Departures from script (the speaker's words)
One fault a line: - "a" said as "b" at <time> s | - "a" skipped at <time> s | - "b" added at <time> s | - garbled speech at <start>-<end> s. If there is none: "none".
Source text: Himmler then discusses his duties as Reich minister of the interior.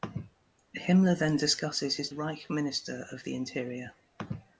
- "duties as" skipped at 2.1 s